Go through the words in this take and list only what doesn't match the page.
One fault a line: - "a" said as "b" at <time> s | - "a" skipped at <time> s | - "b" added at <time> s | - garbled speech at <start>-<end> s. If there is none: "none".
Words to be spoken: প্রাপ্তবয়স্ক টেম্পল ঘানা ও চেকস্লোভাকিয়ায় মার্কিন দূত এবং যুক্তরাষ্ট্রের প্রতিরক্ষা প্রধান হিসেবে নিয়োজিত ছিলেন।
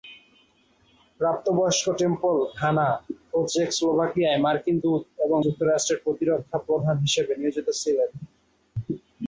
none